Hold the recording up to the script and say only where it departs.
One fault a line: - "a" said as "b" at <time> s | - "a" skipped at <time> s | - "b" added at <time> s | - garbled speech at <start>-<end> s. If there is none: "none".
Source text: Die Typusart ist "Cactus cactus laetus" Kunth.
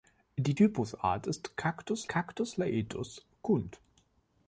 none